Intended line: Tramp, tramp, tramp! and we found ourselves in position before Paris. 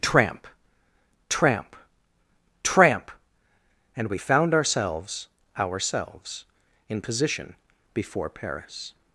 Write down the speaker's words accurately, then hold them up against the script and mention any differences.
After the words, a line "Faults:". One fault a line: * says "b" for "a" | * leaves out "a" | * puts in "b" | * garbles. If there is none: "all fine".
Tramp, tramp, tramp! and we found ourselves ourselves in position before Paris.
Faults:
* puts in "ourselves"